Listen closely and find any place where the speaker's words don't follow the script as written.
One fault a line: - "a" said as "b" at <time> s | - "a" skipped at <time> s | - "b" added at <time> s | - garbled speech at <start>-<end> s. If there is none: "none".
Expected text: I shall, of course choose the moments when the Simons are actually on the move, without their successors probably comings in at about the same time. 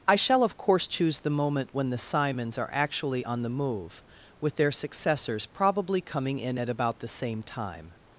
- "moments" said as "moment" at 1.3 s
- "without" said as "with" at 4.4 s
- "comings" said as "coming" at 6.0 s